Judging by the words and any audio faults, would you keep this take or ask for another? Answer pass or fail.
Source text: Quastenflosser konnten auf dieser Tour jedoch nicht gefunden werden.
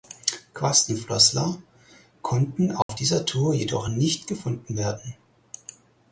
fail